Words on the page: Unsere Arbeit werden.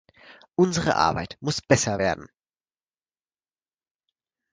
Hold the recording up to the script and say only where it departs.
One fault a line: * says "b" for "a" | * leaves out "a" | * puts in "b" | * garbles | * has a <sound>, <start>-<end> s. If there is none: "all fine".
* puts in "muss besser"